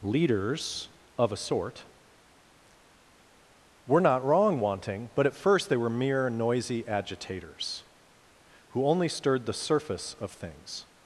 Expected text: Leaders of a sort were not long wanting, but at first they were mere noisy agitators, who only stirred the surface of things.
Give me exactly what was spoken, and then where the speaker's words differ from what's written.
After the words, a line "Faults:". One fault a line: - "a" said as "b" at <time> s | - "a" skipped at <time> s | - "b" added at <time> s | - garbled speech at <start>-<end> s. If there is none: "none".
Leaders of a sort were not wrong wanting, but at first they were mere noisy agitators, who only stirred the surface of things.
Faults:
- "long" said as "wrong" at 4.2 s